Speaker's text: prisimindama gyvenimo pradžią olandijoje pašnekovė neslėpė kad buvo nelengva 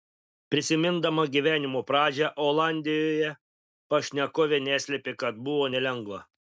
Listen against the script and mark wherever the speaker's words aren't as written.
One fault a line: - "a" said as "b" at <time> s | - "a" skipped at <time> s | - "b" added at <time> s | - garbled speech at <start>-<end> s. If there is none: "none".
none